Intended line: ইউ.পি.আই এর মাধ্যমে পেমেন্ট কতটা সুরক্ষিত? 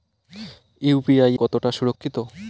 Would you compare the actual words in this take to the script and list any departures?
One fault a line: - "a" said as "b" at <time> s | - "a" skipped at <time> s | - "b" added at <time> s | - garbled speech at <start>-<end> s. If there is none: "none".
- "এর মাধ্যমে পেমেন্ট" skipped at 1.4 s